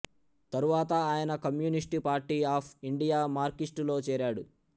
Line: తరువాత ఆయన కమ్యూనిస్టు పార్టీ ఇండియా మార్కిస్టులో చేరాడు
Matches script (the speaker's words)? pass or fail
fail